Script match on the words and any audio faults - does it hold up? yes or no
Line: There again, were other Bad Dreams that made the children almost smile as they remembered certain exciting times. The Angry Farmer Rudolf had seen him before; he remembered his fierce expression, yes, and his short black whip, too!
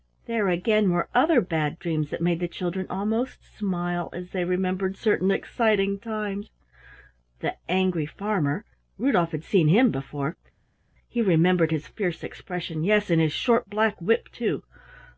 yes